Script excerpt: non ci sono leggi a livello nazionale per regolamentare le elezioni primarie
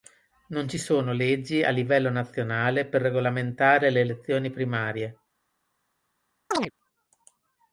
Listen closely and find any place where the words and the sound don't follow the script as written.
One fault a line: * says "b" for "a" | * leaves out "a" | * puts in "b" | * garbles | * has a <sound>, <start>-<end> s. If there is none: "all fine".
* has a chirp, 6.5-6.7 s